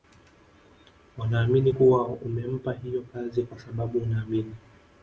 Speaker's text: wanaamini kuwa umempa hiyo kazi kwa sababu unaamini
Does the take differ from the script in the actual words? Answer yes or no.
no